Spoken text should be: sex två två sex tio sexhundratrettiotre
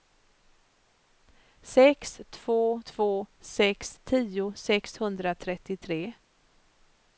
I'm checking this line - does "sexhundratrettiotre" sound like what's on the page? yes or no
yes